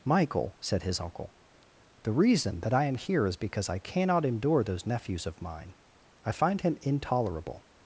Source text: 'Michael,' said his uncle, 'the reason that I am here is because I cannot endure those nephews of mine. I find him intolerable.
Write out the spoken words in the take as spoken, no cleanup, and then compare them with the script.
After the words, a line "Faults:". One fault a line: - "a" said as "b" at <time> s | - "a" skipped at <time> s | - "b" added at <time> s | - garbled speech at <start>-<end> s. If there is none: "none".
'Michael,' said his uncle, 'the reason that I am here is because I cannot endure those nephews of mine. I find him intolerable.
Faults:
none